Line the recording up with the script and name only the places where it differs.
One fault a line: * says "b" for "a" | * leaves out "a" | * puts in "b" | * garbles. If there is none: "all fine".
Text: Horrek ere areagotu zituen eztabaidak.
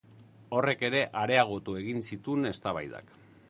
* puts in "egin"